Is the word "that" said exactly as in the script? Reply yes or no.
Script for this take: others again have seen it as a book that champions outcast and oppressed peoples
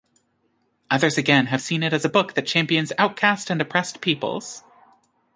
yes